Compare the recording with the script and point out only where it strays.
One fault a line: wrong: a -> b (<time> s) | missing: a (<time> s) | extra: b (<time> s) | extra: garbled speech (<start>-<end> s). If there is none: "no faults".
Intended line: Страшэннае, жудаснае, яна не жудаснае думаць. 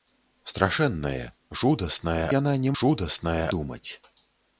no faults